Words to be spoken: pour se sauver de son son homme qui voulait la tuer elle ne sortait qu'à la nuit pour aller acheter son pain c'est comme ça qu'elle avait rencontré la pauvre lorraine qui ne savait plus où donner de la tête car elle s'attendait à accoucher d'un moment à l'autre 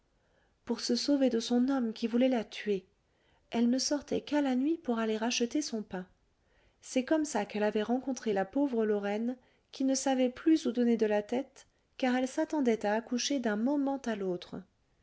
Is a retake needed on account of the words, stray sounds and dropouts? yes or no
yes